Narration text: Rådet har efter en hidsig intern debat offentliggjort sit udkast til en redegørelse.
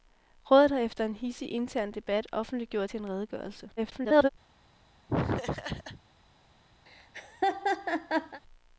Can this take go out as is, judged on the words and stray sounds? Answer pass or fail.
fail